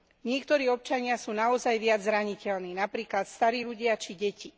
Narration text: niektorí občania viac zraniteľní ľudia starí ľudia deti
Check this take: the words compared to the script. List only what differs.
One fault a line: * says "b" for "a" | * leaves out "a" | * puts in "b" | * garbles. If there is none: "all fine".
* puts in "sú naozaj"
* says "napríklad" for "ľudia"
* puts in "či"